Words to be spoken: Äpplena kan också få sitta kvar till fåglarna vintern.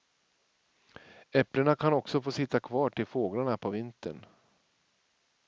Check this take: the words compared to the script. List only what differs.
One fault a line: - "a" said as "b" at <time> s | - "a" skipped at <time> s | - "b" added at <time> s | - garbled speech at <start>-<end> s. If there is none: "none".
- "på" added at 3.6 s